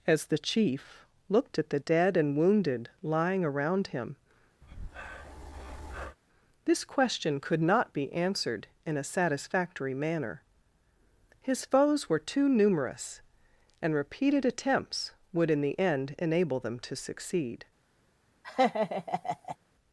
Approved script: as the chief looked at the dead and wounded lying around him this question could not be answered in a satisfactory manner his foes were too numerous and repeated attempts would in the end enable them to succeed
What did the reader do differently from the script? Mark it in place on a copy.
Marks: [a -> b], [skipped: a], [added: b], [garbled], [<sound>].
as the chief looked at the dead and wounded lying around him [breath] this question could not be answered in a satisfactory manner his foes were too numerous and repeated attempts would in the end enable them to succeed [laugh]